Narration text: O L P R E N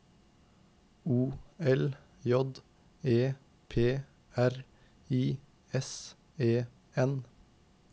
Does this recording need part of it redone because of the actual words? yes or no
yes